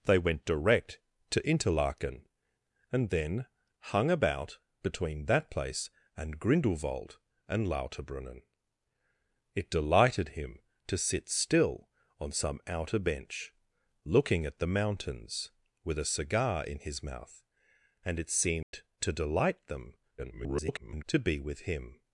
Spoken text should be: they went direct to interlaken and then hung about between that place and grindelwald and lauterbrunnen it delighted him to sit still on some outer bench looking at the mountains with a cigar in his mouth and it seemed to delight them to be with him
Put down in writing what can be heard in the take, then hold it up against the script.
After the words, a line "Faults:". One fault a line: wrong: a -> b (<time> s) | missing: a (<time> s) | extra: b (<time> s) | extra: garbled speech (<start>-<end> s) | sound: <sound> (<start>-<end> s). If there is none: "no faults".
they went direct to interlaken and then hung about between that place and grindelwald and lauterbrunnen it delighted him to sit still on some outer bench looking at the mountains with a cigar in his mouth and it seemed to delight them [garbled] to be with him
Faults:
sound: dropout (18.6-18.7 s)
extra: garbled speech (20.2-21.0 s)